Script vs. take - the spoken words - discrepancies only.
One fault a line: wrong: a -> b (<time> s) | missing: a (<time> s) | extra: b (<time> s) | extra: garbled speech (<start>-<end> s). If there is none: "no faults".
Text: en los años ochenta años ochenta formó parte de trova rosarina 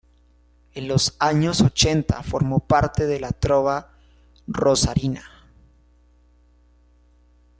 missing: años ochenta (2.2 s)
extra: la (3.2 s)